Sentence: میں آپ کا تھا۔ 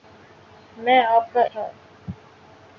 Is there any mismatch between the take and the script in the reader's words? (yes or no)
no